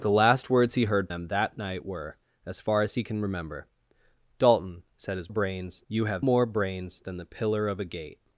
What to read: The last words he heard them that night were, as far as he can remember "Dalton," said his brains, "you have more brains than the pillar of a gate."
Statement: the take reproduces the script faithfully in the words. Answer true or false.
true